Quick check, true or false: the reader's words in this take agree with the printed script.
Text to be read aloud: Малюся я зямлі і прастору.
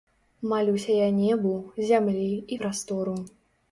false